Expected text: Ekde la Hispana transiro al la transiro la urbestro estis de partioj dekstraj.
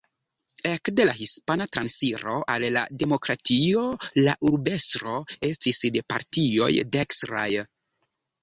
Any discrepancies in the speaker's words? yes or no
yes